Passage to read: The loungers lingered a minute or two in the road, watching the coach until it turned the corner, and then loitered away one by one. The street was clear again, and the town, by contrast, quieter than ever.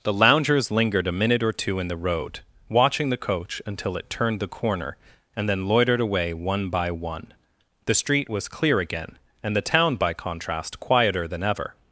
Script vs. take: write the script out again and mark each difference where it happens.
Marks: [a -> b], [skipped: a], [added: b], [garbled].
The loungers lingered a minute or two in the road, watching the coach until it turned the corner, and then loitered away one by one. The street was clear again, and the town, by contrast, quieter than ever.